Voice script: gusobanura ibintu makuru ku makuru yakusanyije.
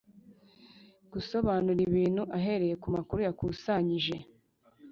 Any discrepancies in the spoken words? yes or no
yes